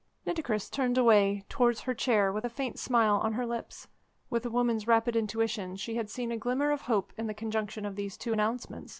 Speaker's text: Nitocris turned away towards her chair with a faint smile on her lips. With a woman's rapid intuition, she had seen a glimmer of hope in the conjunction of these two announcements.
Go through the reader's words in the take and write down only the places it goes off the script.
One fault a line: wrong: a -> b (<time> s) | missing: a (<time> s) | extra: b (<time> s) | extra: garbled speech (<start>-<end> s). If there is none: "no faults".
no faults